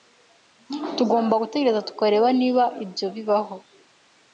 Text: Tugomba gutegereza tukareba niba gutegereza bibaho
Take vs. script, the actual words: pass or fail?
fail